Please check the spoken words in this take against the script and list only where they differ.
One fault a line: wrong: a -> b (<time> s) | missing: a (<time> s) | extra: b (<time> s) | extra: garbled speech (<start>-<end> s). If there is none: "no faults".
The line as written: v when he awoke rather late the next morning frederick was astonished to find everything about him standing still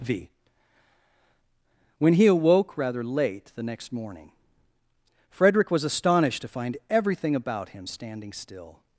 no faults